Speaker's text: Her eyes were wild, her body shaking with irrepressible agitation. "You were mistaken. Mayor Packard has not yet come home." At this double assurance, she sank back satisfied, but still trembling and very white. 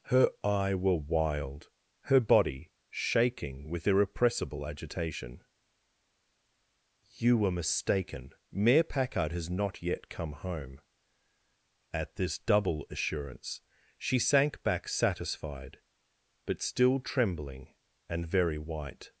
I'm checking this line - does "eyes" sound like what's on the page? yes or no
no